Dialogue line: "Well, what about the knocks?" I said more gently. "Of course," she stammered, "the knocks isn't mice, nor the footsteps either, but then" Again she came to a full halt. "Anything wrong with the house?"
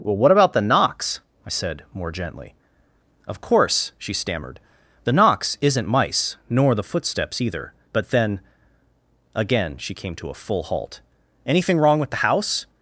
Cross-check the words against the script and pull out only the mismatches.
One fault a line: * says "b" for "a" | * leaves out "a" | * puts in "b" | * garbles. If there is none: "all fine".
all fine